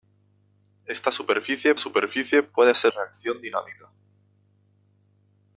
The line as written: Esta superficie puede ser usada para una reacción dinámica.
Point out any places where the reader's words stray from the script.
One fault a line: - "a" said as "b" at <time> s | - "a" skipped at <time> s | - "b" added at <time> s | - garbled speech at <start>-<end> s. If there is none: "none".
- "superficie" added at 1.8 s
- "usada para una" skipped at 2.9 s